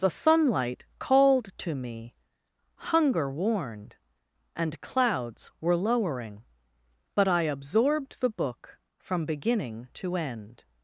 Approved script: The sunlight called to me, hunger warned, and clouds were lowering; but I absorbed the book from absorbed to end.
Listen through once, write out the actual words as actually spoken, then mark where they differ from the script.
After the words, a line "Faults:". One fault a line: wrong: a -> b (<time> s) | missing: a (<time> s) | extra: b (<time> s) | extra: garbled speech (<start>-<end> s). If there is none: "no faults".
The sunlight called to me, hunger warned, and clouds were lowering; but I absorbed the book from beginning to end.
Faults:
wrong: absorbed -> beginning (9.3 s)